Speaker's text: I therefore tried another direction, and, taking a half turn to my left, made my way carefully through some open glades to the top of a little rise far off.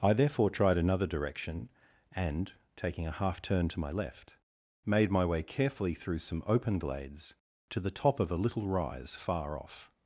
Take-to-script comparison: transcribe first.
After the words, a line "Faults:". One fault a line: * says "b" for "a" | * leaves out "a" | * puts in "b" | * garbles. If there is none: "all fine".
I therefore tried another direction, and, taking a half turn to my left, made my way carefully through some open glades to the top of a little rise far off.
Faults:
all fine